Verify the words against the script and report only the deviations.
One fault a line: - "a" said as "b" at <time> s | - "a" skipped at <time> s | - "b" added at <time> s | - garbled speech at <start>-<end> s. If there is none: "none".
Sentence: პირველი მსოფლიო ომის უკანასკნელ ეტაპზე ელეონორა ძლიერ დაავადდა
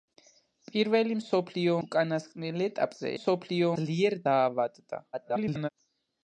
- "ომის" skipped at 1.8 s
- "ელეონორა" said as "მსოფლიო" at 3.1 s
- garbled speech at 5.1-5.7 s